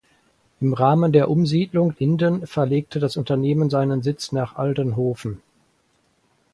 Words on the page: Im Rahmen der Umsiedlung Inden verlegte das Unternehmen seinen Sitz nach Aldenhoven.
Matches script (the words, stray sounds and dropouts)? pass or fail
pass